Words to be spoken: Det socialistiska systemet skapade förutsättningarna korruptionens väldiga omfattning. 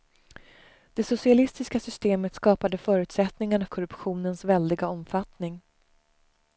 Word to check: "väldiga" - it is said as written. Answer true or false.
true